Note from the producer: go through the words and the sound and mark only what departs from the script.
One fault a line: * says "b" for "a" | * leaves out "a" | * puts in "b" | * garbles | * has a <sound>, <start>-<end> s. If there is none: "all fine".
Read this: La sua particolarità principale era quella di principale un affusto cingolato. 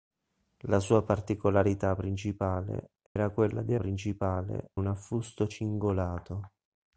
* has a dropout, 3.1-3.2 s